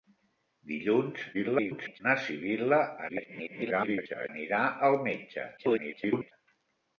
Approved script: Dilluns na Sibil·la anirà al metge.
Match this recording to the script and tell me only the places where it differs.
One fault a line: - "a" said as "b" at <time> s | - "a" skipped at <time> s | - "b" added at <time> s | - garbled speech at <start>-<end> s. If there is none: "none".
- garbled speech at 1.3-2.0 s
- garbled speech at 3.1-4.3 s
- garbled speech at 5.6-6.3 s